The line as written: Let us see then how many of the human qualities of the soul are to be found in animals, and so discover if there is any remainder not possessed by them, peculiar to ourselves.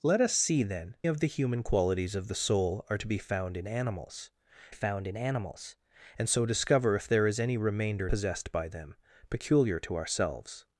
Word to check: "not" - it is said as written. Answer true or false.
false